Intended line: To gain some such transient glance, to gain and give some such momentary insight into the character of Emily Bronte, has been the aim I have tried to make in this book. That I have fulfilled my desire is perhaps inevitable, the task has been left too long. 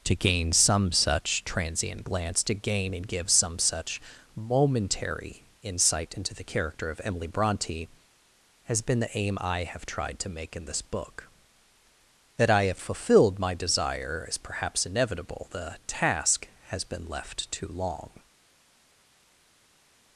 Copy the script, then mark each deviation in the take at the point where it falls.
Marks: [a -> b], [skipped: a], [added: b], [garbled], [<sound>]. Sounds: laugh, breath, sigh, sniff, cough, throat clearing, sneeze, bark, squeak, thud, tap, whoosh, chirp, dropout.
To gain some such transient glance, to gain and give some such momentary insight into the character of Emily Bronte, has been the aim I have tried to make in this book. That I have fulfilled my desire is perhaps inevitable, the task has been left too long.